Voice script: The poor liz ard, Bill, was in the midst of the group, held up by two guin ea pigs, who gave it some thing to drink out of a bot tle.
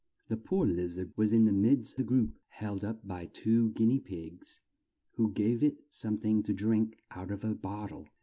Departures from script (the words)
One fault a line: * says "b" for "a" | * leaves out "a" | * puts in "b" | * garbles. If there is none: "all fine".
* leaves out "Bill"
* leaves out "of"